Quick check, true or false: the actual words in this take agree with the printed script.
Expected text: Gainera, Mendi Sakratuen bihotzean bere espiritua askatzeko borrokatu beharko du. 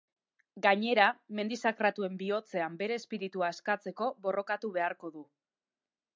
true